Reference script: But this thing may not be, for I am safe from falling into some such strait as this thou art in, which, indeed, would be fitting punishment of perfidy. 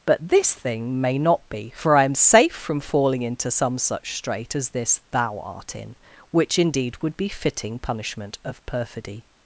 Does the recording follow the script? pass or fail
pass